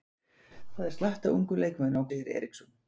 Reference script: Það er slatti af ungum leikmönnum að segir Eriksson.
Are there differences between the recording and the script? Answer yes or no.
no